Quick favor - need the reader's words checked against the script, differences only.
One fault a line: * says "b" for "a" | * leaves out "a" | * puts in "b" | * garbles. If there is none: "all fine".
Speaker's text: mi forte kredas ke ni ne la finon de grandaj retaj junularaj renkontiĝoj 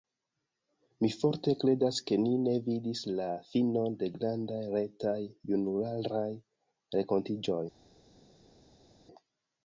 * puts in "vidis"